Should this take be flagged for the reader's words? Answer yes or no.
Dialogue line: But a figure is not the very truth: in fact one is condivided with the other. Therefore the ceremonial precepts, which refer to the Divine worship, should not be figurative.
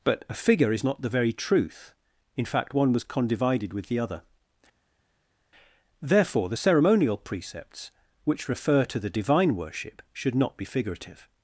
yes